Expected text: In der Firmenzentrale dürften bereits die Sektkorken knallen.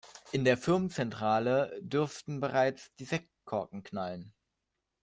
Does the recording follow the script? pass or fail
pass